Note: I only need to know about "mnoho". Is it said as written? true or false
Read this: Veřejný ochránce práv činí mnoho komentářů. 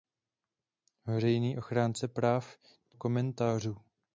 false